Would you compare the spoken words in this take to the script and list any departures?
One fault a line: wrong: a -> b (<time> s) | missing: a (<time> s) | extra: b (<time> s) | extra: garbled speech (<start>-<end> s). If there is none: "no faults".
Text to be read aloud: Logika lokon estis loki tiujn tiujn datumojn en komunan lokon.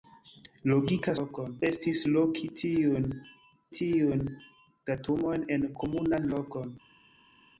no faults